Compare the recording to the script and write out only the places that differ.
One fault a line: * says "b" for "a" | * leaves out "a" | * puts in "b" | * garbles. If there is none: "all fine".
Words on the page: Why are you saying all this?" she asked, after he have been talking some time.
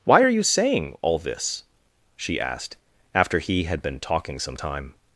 * says "had" for "have"